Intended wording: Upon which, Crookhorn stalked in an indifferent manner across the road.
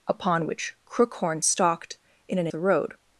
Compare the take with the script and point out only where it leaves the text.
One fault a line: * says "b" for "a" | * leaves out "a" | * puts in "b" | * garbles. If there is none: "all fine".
* leaves out "indifferent manner across"